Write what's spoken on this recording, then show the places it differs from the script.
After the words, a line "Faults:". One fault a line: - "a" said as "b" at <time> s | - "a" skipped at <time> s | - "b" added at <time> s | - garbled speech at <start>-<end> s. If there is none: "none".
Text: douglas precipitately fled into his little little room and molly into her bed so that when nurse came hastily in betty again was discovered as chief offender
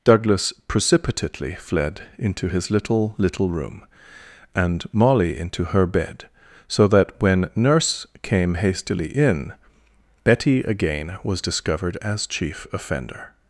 douglas precipitately fled into his little little room and molly into her bed so that when nurse came hastily in betty again was discovered as chief offender
Faults:
none